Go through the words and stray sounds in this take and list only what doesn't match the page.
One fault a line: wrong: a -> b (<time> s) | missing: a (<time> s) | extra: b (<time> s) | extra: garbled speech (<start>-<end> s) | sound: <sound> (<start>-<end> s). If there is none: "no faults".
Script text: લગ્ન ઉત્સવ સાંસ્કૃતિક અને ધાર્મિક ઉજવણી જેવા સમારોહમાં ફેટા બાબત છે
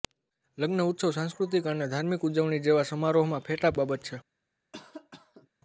sound: cough (4.7-5.5 s)